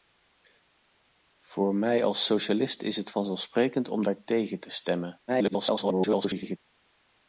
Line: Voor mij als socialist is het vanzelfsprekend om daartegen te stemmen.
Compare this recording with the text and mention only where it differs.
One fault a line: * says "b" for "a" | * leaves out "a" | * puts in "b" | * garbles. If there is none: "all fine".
* garbles